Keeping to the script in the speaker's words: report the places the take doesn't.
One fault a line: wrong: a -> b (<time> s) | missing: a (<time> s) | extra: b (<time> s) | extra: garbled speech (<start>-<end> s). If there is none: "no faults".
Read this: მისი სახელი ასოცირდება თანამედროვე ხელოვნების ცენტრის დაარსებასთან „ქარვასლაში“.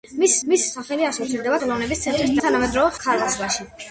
extra: მისი (0.5 s)
missing: თანამედროვე (1.6 s)
wrong: დაარსებასთან -> თანამედროვე (2.5 s)